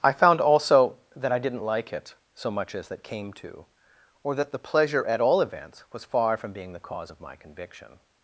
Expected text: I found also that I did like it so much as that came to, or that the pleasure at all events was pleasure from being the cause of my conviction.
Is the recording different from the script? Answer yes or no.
yes